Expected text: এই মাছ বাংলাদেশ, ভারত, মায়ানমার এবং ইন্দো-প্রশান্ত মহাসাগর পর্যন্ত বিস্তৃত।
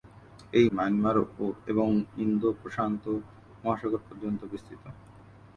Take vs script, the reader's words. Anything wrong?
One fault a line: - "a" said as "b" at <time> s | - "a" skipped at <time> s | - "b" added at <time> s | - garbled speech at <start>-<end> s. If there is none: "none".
- "মাছ বাংলাদেশ ভারত" skipped at 0.7 s